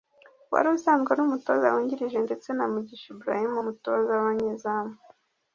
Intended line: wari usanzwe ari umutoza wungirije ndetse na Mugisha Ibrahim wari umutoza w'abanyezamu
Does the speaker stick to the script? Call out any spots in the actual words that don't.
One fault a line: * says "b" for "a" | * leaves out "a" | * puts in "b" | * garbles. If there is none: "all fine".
* leaves out "wari"